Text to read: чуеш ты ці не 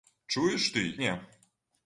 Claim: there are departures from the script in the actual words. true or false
true